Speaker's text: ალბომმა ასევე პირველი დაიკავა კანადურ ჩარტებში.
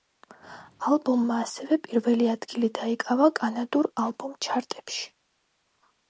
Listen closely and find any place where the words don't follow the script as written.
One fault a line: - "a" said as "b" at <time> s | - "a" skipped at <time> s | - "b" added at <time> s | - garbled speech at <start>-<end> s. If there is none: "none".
- "ადგილი" added at 2.4 s
- "ალბომ" added at 4.0 s